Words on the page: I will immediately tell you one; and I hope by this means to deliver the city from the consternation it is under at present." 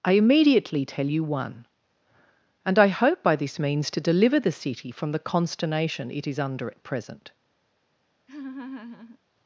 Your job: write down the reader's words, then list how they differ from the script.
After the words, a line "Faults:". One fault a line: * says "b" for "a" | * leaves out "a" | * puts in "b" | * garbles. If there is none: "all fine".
I immediately tell you one; and I hope by this means to deliver the city from the consternation it is under at present."
Faults:
* leaves out "will"